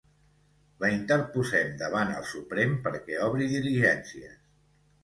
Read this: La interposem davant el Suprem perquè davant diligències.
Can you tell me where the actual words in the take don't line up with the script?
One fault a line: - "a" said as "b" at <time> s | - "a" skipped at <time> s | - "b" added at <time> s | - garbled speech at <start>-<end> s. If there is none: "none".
- "davant" said as "obri" at 3.3 s